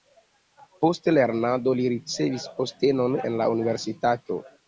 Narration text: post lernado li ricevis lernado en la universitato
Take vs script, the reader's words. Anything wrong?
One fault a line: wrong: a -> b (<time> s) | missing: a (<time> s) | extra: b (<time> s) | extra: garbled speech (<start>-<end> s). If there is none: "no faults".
wrong: lernado -> postenon (2.6 s)